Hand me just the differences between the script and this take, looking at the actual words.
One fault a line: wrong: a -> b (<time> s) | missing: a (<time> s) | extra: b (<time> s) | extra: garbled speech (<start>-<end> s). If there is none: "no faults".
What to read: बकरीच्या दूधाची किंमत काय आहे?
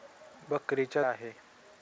missing: दूधाची किंमत काय (1.0 s)